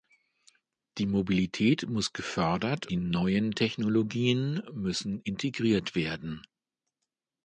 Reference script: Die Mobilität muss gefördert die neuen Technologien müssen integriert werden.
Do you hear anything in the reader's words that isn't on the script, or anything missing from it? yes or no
no